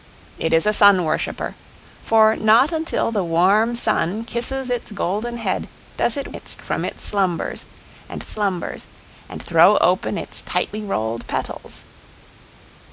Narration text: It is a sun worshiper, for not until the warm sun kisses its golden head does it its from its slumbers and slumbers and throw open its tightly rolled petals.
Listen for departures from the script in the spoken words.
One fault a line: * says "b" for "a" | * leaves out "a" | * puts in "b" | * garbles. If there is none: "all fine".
all fine